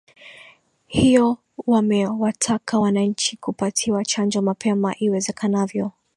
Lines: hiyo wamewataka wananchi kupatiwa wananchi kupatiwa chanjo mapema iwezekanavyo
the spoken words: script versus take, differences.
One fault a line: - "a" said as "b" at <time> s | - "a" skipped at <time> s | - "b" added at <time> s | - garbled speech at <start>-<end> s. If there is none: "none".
- "wananchi kupatiwa" skipped at 4.0 s